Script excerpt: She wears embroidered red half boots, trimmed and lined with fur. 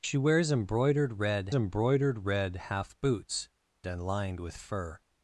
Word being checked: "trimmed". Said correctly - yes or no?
no